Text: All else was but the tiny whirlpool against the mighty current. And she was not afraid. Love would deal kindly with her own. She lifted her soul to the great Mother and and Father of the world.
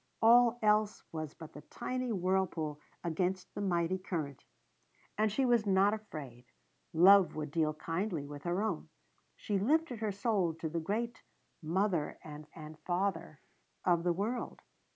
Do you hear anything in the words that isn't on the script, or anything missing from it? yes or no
no